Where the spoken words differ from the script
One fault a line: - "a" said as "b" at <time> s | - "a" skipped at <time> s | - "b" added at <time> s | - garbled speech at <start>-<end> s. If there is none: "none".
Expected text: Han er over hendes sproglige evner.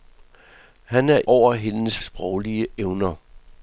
none